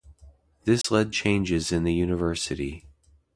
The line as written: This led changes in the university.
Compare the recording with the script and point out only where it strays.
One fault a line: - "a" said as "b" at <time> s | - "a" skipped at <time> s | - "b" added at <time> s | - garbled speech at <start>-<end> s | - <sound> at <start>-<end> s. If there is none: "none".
- dropout at 0.8-0.8 s